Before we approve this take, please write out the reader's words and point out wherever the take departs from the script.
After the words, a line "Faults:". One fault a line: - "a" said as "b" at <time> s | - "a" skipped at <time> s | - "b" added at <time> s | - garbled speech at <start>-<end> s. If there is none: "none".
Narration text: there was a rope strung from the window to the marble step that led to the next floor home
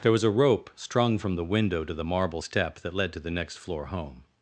there was a rope strung from the window to the marble step that led to the next floor home
Faults:
none